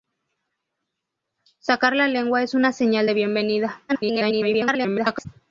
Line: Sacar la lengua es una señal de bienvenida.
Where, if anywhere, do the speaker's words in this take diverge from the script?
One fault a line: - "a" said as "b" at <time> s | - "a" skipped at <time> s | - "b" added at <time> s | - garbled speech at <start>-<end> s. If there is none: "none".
- garbled speech at 3.9-5.3 s